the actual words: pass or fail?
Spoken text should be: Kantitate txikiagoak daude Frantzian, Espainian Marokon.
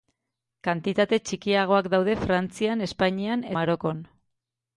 pass